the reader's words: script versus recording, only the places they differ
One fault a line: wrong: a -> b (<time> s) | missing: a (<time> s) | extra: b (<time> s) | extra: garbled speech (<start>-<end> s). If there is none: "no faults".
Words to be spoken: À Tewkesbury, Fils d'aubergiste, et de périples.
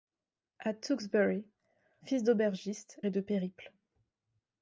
no faults